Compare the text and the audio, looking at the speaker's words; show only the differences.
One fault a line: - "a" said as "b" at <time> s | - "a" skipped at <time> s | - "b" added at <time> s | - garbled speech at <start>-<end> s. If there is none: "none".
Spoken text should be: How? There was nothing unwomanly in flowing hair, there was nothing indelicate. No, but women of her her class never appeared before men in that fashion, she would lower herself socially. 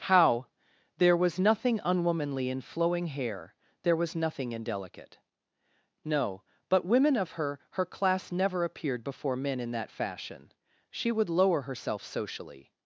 none